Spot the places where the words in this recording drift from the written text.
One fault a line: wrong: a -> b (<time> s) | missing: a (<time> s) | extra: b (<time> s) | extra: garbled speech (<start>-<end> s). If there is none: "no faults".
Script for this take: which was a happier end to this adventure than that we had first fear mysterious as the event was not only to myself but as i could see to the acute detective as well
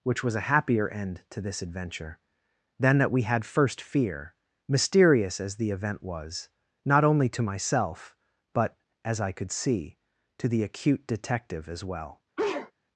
no faults